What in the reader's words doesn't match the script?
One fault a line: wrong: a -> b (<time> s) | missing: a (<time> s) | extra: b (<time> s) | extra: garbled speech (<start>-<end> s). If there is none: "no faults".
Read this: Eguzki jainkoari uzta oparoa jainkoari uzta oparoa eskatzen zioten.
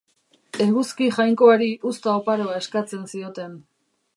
missing: jainkoari uzta oparoa (2.6 s)